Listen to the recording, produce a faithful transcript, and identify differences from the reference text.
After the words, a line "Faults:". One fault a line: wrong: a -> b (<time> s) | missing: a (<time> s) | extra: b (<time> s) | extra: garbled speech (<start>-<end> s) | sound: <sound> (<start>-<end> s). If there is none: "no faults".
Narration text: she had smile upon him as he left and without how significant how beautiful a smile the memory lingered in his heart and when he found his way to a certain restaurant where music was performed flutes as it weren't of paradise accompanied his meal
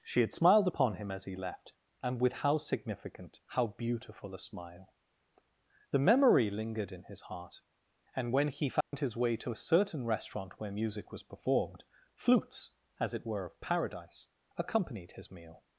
she had smiled upon him as he left and with how significant how beautiful a smile the memory lingered in his heart and when he found his way to a certain restaurant where music was performed flutes as it were of paradise accompanied his meal
Faults:
wrong: smile -> smiled (0.3 s)
wrong: without -> with (2.2 s)
sound: dropout (8.8-8.9 s)
wrong: weren't -> were (13.2 s)